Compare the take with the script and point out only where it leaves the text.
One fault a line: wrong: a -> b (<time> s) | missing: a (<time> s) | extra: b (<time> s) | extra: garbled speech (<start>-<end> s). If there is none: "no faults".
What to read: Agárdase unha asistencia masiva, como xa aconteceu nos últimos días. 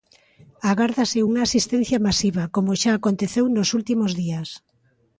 no faults